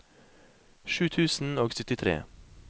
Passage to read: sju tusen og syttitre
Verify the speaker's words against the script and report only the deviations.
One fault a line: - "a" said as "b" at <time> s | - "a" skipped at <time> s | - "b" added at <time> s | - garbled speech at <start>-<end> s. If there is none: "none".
none